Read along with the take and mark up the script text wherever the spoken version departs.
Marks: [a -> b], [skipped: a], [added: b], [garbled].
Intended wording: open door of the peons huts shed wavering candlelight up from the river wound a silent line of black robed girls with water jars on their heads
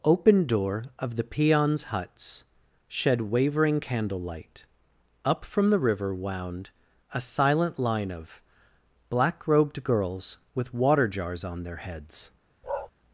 open door of the peons huts shed wavering candlelight up from the river wound a silent line of black robed girls with water jars on their heads